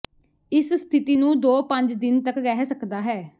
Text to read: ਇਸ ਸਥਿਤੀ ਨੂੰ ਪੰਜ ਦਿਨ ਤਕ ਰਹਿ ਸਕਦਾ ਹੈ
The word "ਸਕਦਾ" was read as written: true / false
true